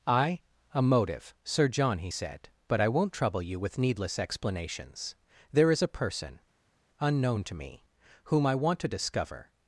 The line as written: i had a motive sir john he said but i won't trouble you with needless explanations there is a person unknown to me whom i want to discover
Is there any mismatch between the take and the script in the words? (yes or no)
yes